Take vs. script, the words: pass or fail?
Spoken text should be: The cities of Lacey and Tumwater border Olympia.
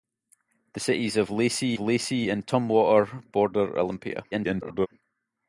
fail